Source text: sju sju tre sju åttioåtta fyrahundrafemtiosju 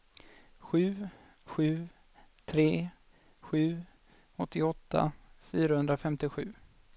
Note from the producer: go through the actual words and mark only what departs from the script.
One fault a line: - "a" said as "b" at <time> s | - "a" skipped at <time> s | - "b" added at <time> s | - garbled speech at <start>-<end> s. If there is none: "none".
none